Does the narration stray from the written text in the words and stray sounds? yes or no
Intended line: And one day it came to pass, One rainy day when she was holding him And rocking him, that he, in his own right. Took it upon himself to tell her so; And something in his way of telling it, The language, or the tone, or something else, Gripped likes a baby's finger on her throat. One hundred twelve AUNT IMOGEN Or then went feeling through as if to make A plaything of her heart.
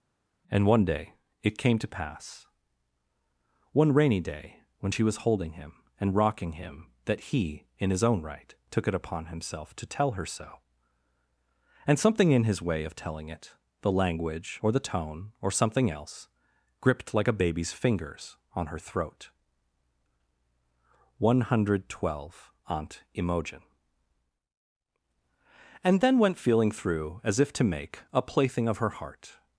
yes